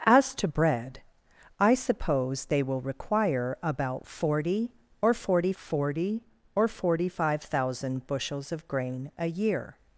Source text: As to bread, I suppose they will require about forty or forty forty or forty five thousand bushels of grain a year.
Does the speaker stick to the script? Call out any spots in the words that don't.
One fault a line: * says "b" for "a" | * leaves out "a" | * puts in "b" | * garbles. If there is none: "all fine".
all fine